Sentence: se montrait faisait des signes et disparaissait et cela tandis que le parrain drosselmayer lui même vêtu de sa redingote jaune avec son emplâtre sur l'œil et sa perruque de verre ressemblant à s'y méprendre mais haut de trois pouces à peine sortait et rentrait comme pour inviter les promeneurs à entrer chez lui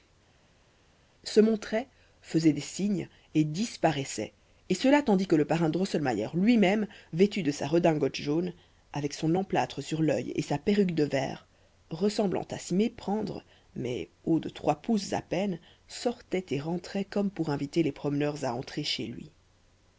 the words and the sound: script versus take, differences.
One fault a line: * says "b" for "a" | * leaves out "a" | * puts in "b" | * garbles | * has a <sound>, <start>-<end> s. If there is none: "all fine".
all fine